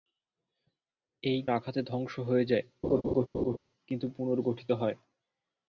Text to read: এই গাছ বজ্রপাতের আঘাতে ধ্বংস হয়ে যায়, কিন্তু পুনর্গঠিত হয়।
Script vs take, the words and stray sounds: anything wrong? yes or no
yes